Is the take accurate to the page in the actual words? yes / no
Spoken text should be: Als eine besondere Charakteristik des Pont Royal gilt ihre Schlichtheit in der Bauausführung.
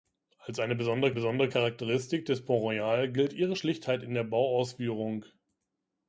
no